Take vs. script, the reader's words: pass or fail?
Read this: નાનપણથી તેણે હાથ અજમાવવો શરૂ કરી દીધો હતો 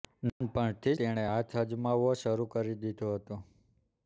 pass